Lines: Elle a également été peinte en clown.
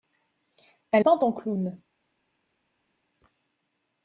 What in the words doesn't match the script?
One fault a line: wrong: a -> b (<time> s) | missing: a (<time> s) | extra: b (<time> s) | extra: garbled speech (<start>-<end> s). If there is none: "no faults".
missing: a également été (1.1 s)